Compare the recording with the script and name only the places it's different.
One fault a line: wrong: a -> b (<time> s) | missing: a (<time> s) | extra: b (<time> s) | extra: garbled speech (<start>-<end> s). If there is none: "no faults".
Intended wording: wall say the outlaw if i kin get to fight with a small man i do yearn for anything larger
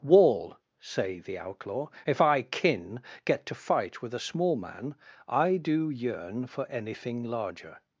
no faults